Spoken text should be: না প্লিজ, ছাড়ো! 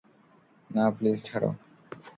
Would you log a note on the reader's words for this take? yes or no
no